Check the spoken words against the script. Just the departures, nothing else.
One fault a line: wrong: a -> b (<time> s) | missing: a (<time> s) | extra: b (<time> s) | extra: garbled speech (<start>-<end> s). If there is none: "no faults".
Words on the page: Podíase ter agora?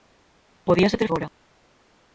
no faults